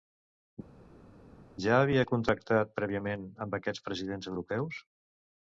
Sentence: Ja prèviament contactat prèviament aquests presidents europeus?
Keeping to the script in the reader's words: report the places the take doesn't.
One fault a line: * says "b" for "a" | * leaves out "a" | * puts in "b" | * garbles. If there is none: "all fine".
* says "havia" for "prèviament"
* puts in "amb"